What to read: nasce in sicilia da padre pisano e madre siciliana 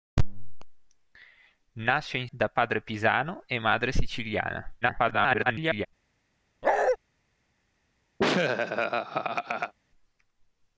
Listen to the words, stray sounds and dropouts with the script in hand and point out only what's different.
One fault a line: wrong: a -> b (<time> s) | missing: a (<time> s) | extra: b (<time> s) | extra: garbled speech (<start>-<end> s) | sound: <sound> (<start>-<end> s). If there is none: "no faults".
missing: sicilia (2.3 s)
extra: garbled speech (4.8-5.9 s)
sound: bark (6.6-7.0 s)
sound: laugh (8.2-9.7 s)